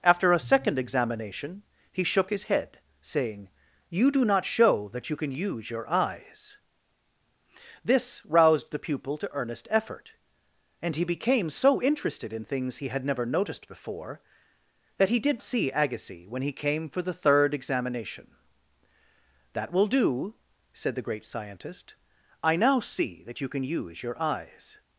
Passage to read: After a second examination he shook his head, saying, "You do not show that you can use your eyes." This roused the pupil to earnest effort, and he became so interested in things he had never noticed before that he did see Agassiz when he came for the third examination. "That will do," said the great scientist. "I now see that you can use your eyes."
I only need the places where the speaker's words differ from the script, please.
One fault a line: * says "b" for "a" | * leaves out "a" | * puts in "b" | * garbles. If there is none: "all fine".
all fine